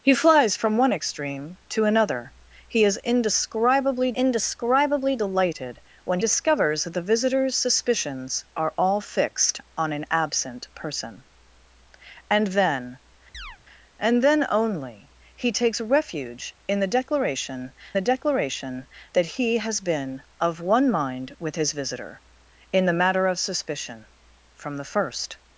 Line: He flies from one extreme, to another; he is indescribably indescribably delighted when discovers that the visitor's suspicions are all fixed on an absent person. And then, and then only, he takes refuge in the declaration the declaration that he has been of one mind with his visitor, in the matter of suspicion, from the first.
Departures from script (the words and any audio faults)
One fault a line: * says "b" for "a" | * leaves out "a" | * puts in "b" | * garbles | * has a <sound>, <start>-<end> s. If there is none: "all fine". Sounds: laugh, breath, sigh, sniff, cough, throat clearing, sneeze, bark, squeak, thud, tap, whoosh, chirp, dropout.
* has a chirp, 13.3-13.6 s